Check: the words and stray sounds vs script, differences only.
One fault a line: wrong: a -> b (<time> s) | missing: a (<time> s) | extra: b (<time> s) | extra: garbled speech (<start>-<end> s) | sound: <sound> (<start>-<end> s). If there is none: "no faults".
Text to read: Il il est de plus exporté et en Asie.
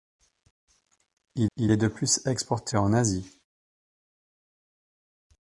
no faults